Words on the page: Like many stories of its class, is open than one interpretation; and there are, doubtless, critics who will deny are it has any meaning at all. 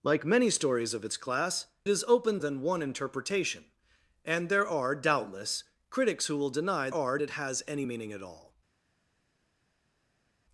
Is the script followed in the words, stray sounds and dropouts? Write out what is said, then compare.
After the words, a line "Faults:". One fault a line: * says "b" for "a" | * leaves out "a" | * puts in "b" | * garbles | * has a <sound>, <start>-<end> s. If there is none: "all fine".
Like many stories of its class, is open than one interpretation; and there are, doubtless, critics who will deny are it has any meaning at all.
Faults:
all fine